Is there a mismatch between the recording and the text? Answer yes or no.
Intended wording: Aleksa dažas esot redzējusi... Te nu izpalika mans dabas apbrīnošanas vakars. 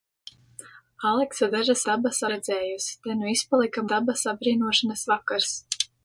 yes